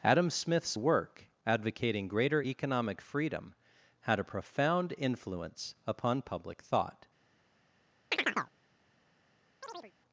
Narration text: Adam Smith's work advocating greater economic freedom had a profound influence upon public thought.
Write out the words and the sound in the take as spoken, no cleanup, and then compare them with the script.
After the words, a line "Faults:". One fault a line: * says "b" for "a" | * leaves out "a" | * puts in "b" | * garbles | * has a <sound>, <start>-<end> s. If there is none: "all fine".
Adam Smith's work advocating greater economic freedom had a profound influence upon public thought.
Faults:
* has a chirp, 8.1-8.5 s
* has a chirp, 9.6-9.9 s